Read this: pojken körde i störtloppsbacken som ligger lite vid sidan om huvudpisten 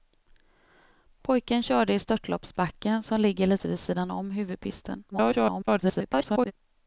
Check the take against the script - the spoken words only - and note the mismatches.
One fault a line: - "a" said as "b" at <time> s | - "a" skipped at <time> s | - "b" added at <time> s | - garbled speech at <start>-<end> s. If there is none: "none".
- garbled speech at 5.1-6.5 s